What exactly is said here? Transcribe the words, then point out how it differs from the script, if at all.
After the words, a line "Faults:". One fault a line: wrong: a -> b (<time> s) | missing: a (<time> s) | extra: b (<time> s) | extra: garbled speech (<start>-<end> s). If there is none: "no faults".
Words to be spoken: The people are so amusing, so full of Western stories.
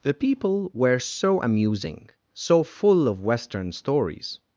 The people were so amusing, so full of Western stories.
Faults:
wrong: are -> were (0.7 s)